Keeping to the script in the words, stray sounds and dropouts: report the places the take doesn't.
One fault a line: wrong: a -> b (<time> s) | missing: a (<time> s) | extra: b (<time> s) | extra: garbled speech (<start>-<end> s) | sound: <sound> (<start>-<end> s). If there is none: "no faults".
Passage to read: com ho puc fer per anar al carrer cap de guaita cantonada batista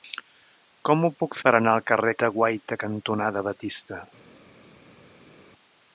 missing: fer (1.4 s)
missing: cap (2.1 s)